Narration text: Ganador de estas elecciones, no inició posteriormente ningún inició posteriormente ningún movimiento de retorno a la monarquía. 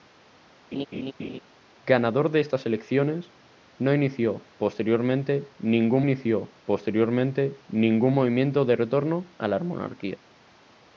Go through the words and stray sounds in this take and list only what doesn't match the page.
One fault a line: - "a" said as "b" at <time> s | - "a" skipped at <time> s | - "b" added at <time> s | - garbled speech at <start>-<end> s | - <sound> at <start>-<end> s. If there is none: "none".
- laugh at 0.7-1.4 s